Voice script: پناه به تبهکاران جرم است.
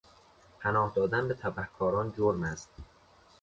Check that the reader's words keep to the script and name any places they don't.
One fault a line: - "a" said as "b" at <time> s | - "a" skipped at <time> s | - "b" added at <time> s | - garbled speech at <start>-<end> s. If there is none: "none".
- "دادن" added at 0.9 s